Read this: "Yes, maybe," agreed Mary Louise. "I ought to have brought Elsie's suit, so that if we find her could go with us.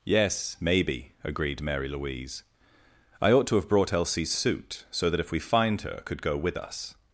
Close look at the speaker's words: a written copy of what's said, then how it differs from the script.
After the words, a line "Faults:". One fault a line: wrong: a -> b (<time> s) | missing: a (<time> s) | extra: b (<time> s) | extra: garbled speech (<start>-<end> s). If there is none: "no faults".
"Yes, maybe," agreed Mary Louise. "I ought to have brought Elsie's suit, so that if we find her could go with us.
Faults:
no faults